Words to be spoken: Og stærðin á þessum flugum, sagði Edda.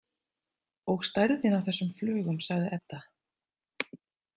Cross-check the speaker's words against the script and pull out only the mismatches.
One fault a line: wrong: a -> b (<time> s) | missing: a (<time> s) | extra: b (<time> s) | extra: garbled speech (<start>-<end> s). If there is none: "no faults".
no faults